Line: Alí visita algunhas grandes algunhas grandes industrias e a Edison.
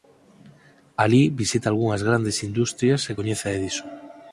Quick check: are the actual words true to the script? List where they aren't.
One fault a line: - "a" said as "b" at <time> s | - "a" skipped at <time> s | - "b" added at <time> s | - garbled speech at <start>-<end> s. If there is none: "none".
- "algunhas grandes" skipped at 2.4 s
- "coñece" added at 3.2 s